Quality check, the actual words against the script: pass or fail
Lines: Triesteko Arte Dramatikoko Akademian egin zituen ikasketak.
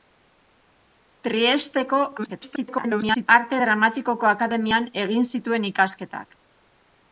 fail